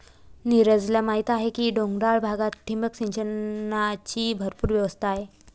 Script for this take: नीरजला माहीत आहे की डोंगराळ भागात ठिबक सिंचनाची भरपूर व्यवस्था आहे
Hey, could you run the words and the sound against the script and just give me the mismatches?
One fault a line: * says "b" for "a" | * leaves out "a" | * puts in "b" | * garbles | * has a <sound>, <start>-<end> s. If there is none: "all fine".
all fine